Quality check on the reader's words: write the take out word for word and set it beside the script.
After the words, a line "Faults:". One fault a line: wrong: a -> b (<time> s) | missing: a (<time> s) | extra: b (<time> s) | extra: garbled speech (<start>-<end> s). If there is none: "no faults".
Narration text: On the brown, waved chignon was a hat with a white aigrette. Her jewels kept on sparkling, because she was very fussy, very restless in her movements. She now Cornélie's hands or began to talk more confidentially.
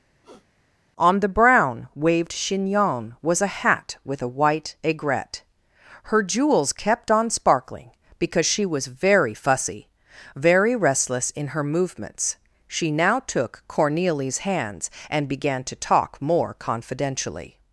On the brown, waved chignon was a hat with a white aigrette. Her jewels kept on sparkling, because she was very fussy, very restless in her movements. She now took Cornélie's hands and began to talk more confidentially.
Faults:
extra: took (13.2 s)
wrong: or -> and (15.1 s)